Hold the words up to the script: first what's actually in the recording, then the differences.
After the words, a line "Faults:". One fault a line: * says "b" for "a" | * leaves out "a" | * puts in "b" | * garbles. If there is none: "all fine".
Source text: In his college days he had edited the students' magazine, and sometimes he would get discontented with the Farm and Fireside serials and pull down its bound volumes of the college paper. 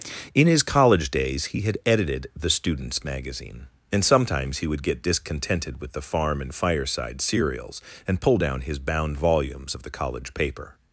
In his college days he had edited the students' magazine, and sometimes he would get discontented with the Farm and Fireside serials and pull down his bound volumes of the college paper.
Faults:
* says "his" for "its"